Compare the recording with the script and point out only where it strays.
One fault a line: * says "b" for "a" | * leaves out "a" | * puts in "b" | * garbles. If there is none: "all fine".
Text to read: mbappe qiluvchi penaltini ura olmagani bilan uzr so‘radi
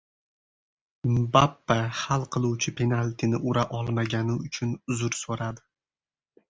* puts in "hal"
* says "uchun" for "bilan"